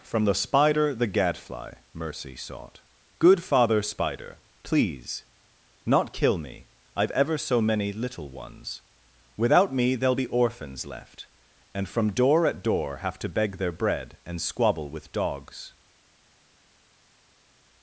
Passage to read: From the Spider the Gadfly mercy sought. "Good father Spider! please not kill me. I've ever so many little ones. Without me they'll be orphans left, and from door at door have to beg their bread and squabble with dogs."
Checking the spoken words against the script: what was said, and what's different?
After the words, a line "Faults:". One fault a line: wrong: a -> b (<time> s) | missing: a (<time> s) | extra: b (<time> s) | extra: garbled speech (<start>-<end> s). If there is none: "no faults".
From the Spider the Gadfly mercy sought. "Good father Spider! please not kill me. I've ever so many little ones. Without me they'll be orphans left, and from door at door have to beg their bread and squabble with dogs."
Faults:
no faults